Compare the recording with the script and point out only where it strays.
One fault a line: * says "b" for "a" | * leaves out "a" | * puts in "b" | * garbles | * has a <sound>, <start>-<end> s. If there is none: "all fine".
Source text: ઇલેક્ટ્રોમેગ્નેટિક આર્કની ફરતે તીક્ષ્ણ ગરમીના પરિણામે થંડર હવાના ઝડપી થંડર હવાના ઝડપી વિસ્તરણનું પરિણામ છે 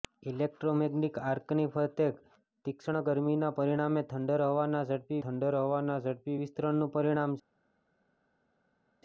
all fine